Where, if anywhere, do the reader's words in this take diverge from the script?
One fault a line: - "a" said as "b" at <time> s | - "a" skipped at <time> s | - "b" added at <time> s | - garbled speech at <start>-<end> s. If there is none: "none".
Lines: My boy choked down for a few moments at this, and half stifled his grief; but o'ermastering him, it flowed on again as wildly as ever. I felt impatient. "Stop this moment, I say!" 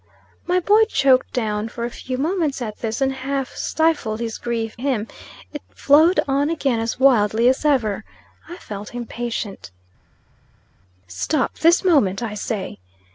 - "but o'ermastering" skipped at 4.8 s